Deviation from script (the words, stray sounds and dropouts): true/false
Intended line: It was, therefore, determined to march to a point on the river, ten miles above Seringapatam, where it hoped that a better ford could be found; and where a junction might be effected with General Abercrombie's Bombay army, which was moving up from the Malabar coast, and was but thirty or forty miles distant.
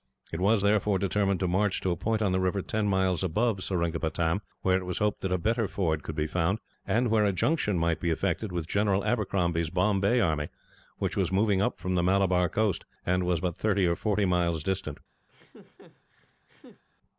true